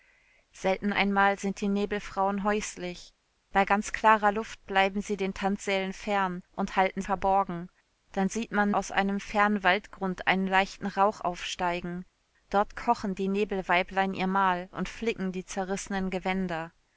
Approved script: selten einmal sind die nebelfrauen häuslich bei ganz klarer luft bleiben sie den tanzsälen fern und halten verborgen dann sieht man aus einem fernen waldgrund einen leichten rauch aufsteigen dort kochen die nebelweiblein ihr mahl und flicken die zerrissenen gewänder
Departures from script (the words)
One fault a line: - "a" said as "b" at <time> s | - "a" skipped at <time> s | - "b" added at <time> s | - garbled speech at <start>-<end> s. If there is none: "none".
none